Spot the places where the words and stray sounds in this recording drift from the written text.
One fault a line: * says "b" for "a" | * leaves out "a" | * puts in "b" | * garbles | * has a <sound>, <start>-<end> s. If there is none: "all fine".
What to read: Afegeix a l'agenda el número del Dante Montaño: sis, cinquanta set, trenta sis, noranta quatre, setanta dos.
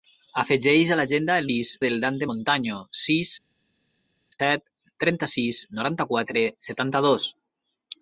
* says "sis" for "número"
* leaves out "cinquanta"